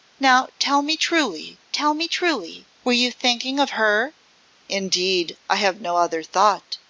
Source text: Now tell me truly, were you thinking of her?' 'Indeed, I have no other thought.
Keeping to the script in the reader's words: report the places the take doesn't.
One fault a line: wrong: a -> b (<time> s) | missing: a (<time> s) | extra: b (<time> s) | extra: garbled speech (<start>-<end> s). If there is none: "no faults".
extra: tell me truly (1.7 s)